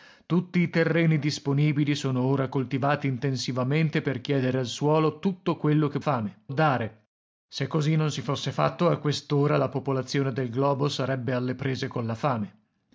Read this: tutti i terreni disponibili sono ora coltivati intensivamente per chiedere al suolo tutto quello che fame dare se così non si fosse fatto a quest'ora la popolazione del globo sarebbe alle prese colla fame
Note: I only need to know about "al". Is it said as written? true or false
true